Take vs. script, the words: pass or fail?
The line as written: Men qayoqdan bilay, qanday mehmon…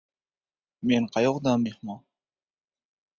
fail